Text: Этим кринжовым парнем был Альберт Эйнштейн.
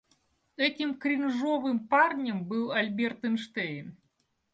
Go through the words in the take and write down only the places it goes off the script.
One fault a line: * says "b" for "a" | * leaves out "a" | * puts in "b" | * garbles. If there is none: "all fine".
all fine